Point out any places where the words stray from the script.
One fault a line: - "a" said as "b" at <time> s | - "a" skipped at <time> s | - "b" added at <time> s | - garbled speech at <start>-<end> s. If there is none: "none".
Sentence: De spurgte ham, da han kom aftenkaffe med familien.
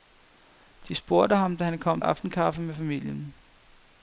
none